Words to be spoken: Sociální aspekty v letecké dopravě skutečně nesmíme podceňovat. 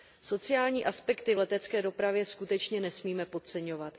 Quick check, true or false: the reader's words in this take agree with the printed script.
true